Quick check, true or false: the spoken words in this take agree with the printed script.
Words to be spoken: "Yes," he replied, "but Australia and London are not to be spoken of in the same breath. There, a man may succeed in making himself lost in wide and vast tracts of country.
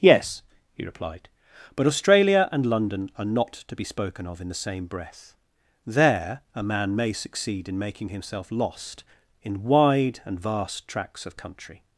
true